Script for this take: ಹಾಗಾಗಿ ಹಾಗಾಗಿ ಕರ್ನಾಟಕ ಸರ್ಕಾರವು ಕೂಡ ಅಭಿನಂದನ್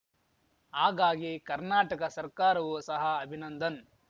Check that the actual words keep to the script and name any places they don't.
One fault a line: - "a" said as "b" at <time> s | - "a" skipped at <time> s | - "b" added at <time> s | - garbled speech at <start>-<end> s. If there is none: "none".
- "ಹಾಗಾಗಿ" skipped at 1.3 s
- "ಕೂಡ" said as "ಸಹ" at 2.8 s